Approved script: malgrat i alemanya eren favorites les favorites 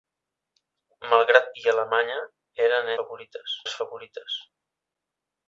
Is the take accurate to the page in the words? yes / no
yes